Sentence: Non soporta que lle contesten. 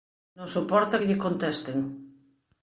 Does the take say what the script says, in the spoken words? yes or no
yes